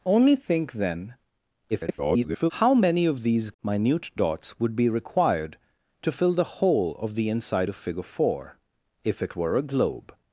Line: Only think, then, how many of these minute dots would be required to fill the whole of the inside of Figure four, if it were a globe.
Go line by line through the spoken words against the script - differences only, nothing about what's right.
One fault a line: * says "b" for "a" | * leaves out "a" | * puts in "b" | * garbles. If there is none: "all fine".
* garbles